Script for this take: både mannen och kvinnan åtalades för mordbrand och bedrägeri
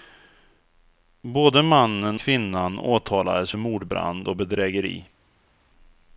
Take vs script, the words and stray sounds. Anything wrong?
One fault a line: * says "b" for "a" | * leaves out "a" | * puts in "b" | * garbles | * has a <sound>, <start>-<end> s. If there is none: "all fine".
* leaves out "och"